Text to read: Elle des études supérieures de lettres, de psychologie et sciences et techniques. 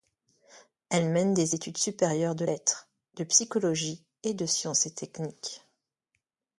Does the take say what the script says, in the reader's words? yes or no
no